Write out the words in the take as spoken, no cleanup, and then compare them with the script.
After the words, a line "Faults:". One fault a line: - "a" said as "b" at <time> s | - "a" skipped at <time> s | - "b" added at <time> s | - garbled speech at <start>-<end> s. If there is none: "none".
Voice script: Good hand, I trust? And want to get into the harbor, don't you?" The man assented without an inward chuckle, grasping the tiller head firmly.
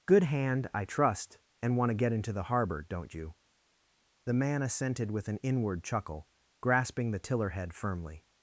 Good hand, I trust? And want to get into the harbor, don't you?" The man assented with an inward chuckle, grasping the tiller head firmly.
Faults:
- "without" said as "with" at 5.1 s